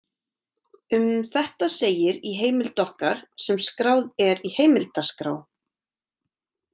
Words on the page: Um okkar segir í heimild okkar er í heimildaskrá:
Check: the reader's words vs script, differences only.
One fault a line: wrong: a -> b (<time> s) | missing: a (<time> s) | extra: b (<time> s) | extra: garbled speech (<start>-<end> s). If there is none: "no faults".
wrong: okkar -> þetta (1.3 s)
extra: sem skráð (3.5 s)